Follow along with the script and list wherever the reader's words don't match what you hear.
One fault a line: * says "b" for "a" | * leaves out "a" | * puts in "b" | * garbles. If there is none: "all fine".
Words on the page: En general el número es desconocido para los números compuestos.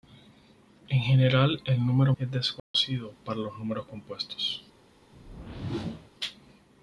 all fine